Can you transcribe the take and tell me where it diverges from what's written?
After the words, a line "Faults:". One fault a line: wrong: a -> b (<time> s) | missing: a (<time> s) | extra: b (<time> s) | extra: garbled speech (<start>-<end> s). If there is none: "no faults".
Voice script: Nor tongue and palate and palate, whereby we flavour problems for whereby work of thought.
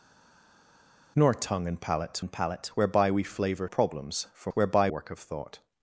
Nor tongue and palate and palate, whereby we flavour problems for whereby work of thought.
Faults:
no faults